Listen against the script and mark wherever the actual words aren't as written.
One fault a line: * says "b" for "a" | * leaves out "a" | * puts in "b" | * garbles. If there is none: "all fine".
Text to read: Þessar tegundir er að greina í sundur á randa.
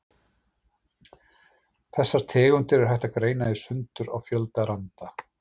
* puts in "hægt"
* puts in "fjölda"